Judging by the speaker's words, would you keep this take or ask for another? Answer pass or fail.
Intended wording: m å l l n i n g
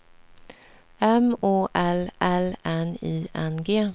pass